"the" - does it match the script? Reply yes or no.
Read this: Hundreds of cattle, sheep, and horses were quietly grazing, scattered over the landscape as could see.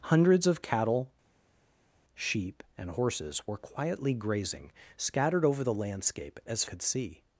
yes